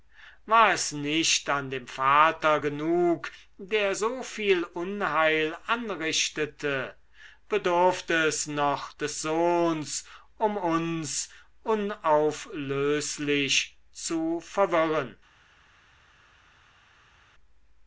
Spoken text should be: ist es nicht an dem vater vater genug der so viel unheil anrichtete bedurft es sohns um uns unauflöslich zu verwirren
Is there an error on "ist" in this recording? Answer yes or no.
yes